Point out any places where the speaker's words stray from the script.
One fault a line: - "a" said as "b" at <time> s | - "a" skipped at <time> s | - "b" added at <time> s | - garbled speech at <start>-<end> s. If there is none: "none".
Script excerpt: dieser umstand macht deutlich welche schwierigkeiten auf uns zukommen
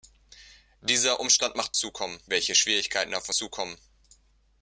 - "deutlich" said as "zukommen" at 1.8 s
- "uns" skipped at 3.3 s